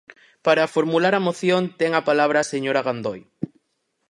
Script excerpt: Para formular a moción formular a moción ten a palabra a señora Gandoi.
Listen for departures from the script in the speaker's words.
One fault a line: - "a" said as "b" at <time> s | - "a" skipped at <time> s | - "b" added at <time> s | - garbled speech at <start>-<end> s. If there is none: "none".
- "formular a moción" skipped at 1.6 s